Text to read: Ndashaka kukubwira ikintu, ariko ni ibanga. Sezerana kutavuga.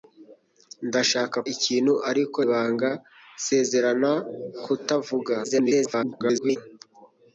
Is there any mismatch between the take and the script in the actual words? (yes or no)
yes